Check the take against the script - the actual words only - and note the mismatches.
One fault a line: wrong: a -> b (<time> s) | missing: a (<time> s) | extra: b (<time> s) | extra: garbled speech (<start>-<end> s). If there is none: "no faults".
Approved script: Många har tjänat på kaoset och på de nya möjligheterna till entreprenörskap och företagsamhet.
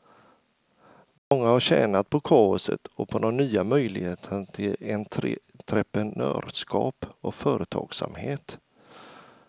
no faults